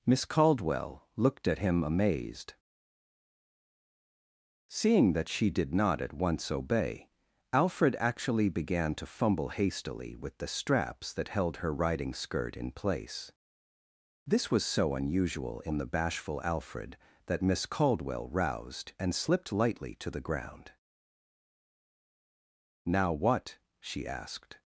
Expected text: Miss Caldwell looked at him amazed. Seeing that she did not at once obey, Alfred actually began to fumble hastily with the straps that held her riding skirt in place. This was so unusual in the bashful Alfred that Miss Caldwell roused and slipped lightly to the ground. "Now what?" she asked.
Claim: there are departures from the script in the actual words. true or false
false